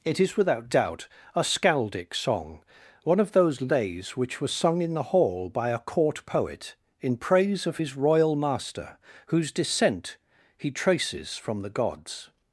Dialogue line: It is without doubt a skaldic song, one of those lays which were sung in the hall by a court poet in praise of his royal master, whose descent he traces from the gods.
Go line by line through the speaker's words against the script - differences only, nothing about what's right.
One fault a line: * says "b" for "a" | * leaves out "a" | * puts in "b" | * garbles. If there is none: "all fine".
all fine